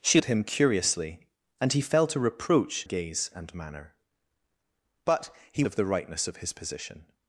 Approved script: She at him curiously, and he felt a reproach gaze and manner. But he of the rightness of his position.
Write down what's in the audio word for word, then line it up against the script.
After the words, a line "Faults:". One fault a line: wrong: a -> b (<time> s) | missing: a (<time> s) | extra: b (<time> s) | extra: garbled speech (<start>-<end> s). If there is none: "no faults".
She at him curiously, and he felt a reproach gaze and manner. But he of the rightness of his position.
Faults:
no faults